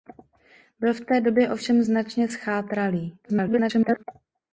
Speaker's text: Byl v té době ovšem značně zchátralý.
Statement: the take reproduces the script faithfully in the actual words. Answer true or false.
false